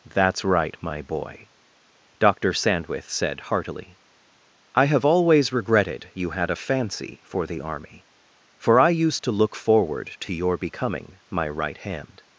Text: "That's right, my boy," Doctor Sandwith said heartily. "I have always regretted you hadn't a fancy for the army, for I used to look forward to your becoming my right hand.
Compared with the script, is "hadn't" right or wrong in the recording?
wrong